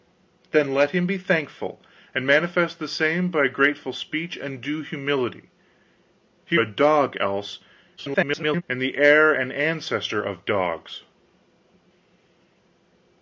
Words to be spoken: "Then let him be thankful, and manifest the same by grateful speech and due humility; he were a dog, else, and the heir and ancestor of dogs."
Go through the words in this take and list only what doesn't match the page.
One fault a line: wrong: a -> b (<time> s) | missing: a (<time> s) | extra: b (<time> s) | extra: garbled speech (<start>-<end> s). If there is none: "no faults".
missing: were (6.6 s)
extra: garbled speech (8.0-8.6 s)